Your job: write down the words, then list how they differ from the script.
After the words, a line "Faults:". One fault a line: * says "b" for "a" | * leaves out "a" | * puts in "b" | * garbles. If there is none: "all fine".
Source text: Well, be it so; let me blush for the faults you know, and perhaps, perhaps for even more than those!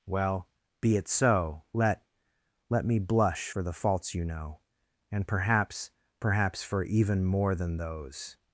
Well, be it so; let let me blush for the faults you know, and perhaps, perhaps for even more than those!
Faults:
* puts in "let"